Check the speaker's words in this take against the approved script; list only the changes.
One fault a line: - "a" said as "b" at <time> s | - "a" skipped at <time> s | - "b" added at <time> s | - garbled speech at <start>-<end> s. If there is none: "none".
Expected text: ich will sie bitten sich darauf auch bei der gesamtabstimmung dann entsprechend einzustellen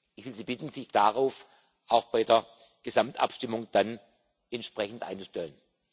none